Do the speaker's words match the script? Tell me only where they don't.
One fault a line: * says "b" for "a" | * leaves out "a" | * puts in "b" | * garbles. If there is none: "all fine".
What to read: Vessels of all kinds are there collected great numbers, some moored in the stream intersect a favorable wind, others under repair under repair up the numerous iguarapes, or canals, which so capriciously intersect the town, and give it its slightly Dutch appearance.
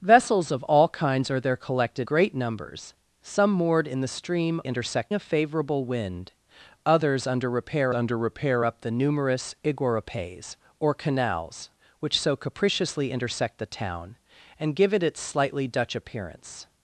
all fine